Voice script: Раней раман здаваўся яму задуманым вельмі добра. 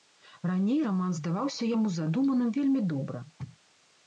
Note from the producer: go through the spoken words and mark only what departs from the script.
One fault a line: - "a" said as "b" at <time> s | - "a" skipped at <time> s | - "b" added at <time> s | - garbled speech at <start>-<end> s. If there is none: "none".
none